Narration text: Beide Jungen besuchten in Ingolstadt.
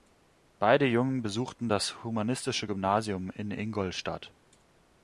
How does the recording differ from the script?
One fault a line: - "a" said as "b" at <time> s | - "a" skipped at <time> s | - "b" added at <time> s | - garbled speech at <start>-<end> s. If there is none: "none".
- "das Humanistische Gymnasium" added at 1.7 s